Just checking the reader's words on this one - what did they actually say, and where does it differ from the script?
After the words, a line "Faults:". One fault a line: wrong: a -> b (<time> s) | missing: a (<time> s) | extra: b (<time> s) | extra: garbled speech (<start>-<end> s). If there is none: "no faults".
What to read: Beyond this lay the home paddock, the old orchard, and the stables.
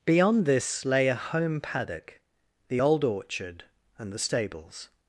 Beyond this lay a home paddock, the old orchard, and the stables.
Faults:
wrong: the -> a (1.1 s)